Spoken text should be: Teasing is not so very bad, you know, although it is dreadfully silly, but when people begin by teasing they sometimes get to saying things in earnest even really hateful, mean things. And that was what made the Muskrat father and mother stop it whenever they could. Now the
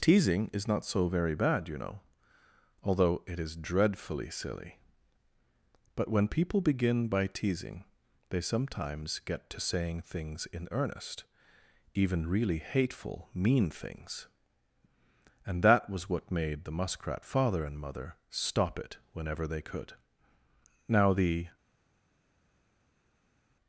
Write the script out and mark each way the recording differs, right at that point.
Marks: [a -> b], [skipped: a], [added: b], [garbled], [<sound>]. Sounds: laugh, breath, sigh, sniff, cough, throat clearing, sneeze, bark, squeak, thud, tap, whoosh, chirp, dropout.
Teasing is not so very bad, you know, although it is dreadfully silly, but when people begin by teasing they sometimes get to saying things in earnest even really hateful, mean things. And that was what made the Muskrat father and mother stop it whenever they could. Now the